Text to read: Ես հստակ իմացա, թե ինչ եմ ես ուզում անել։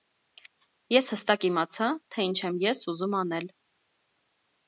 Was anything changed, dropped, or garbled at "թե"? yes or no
no